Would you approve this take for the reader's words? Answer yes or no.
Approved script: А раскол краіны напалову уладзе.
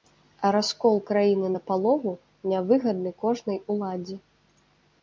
no